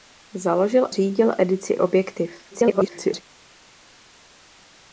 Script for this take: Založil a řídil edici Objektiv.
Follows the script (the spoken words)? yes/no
no